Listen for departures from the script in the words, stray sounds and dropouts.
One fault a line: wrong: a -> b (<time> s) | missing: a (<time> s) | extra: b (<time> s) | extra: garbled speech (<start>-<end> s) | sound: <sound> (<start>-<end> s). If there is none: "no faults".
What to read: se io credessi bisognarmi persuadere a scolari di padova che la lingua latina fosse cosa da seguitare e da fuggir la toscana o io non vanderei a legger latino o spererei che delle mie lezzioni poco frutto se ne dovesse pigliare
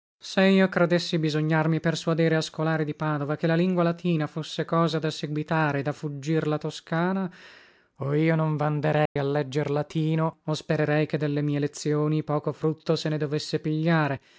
sound: dropout (9.1-9.2 s)